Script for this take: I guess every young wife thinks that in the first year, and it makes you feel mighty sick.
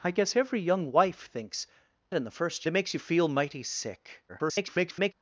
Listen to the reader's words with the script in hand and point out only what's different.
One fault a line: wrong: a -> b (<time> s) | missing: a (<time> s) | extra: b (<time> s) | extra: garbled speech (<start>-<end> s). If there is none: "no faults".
missing: that (1.7 s)
missing: year and (2.7 s)
extra: garbled speech (4.3-5.1 s)